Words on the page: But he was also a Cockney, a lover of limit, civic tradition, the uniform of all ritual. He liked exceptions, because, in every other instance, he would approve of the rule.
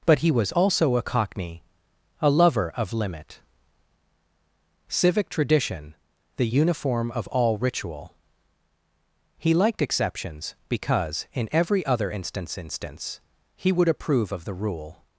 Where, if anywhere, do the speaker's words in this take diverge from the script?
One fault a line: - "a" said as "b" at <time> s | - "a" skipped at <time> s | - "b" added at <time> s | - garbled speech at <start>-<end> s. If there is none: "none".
- "instance" added at 12.6 s